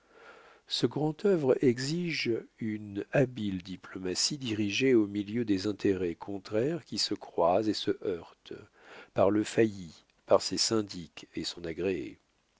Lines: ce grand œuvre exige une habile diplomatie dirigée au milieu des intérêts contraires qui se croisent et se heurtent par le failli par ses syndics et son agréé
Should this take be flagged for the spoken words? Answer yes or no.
no